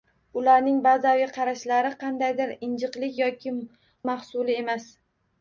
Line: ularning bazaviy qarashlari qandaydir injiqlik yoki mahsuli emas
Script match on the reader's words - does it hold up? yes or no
yes